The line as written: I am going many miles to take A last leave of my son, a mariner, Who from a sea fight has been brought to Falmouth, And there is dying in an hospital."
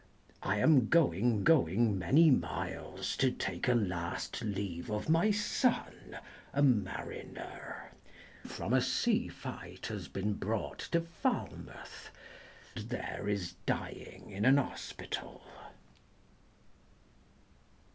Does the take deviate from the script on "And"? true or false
true